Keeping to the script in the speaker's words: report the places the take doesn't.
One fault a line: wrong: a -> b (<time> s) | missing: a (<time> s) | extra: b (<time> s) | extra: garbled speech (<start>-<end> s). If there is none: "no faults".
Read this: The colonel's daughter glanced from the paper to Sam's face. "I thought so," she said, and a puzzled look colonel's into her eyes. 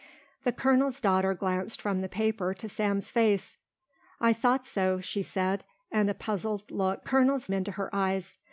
no faults